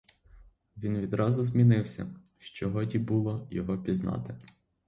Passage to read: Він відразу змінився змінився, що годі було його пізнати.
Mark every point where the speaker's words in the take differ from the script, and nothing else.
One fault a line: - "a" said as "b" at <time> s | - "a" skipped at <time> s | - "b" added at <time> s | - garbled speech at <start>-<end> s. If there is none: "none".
- "змінився" skipped at 2.1 s